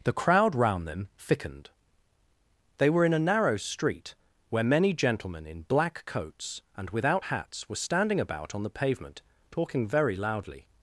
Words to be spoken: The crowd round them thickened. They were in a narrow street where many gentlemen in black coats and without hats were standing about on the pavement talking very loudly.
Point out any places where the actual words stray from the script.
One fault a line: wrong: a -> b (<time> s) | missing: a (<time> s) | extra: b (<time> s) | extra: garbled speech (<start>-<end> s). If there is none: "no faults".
no faults